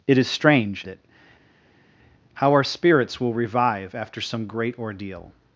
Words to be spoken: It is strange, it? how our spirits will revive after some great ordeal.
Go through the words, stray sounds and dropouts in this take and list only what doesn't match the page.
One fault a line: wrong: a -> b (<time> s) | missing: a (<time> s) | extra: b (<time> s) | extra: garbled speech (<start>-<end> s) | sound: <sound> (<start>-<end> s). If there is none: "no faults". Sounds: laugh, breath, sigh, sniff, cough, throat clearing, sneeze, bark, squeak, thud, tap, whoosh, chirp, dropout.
no faults